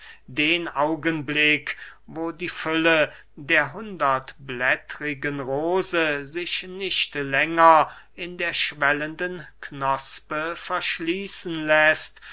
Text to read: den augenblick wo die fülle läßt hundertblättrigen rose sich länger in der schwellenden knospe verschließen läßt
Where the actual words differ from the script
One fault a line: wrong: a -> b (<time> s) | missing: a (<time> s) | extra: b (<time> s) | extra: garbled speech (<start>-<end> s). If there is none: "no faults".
wrong: läßt -> der (3.4 s)
extra: nicht (6.6 s)